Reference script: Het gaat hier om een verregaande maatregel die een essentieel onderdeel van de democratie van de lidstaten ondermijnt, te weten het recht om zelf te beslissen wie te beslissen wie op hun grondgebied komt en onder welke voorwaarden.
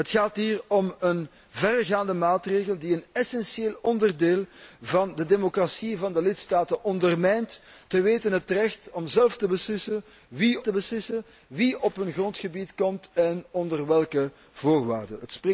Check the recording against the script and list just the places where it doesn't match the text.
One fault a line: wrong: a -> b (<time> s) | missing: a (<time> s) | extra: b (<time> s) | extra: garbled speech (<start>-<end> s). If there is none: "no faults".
no faults